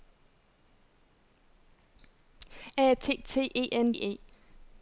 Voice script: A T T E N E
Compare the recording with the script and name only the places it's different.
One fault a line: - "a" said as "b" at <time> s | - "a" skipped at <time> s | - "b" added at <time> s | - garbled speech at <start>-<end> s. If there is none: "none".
none